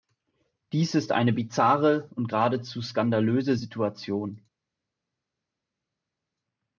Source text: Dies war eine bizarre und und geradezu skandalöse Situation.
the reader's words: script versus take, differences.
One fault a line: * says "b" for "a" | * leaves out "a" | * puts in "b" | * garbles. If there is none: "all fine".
* says "ist" for "war"
* leaves out "und"